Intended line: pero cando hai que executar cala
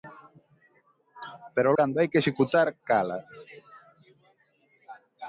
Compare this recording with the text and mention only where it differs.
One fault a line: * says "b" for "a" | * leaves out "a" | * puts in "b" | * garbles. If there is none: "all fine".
all fine